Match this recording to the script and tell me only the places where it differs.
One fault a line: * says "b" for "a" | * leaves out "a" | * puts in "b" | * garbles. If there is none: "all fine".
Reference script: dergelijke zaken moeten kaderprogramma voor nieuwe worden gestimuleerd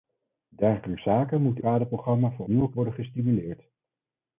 all fine